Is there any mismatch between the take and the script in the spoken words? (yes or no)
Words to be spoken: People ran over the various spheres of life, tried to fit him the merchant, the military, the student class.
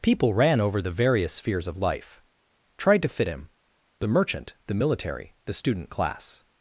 no